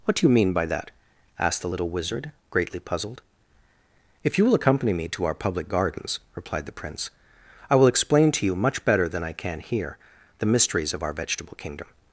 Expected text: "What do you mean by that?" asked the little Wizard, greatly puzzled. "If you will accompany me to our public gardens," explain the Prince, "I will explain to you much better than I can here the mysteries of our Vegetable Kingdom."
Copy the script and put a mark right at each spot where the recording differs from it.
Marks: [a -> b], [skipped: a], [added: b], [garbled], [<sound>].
"What do you mean by that?" asked the little Wizard, greatly puzzled. "If you will accompany me to our public gardens," [explain -> replied] the Prince, "I will explain to you much better than I can here the mysteries of our Vegetable Kingdom."